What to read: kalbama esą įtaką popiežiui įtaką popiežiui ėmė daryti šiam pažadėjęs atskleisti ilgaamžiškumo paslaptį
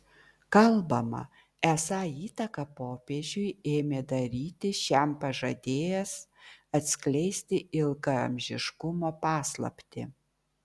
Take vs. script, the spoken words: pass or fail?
fail